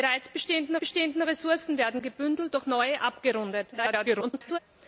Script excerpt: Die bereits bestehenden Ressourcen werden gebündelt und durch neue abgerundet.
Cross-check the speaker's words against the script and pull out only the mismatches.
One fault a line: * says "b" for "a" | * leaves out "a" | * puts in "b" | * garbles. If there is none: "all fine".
* puts in "bestehenden"
* leaves out "und"
* garbles